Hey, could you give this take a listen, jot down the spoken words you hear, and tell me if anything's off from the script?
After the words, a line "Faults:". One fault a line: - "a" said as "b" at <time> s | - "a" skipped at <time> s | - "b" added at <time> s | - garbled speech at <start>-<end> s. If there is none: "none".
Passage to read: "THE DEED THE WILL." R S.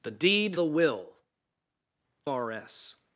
"THE DEED THE WILL." R S.
Faults:
none